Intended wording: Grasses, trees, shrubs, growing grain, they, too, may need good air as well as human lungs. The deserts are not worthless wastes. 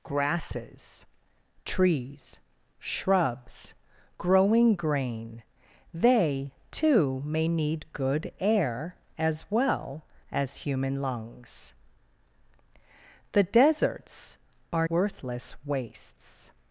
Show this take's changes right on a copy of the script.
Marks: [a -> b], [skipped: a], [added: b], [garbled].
Grasses, trees, shrubs, growing grain, they, too, may need good air as well as human lungs. The deserts are [skipped: not] worthless wastes.